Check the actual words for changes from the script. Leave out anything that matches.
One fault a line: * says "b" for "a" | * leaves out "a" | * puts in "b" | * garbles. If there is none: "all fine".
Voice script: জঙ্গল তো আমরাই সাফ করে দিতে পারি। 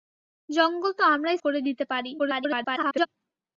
* leaves out "সাফ"
* garbles